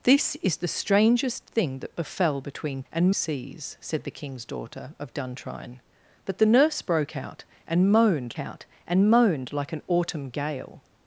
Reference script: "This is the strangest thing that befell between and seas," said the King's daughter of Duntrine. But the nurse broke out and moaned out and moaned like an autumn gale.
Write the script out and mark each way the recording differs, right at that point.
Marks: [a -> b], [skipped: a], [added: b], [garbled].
"This is the strangest thing that befell between and seas," said the King's daughter of Duntrine. But the nurse broke out and moaned out and moaned like an autumn gale.